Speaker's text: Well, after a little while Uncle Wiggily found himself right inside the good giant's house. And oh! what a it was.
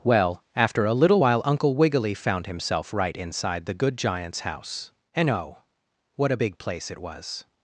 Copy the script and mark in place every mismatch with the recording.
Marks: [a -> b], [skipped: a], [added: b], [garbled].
Well, after a little while Uncle Wiggily found himself right inside the good giant's house. And oh! what a [added: big place] it was.